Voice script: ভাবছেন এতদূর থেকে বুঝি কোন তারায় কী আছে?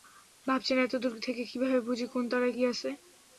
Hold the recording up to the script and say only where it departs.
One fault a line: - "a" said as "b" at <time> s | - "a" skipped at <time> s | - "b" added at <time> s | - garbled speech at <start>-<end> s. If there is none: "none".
- "কীভাবে" added at 1.4 s